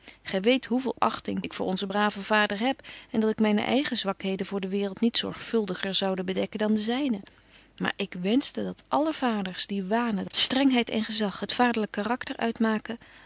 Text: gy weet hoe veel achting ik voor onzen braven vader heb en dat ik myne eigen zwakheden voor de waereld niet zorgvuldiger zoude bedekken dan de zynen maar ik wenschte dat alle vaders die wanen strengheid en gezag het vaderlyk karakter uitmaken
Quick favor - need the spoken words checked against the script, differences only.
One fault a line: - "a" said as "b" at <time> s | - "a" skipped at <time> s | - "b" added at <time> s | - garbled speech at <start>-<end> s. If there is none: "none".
none